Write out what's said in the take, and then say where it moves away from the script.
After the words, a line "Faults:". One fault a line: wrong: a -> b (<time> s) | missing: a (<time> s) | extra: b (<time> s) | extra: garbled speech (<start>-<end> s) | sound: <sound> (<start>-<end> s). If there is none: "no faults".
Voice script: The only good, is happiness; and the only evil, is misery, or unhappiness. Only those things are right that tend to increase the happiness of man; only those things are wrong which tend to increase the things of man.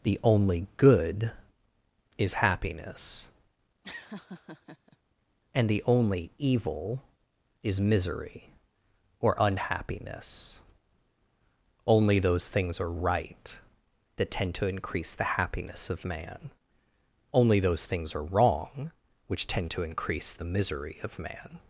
The only good, is happiness; and the only evil, is misery, or unhappiness. Only those things are right that tend to increase the happiness of man; only those things are wrong which tend to increase the misery of man.
Faults:
sound: laugh (3.8-5.0 s)
wrong: things -> misery (20.4 s)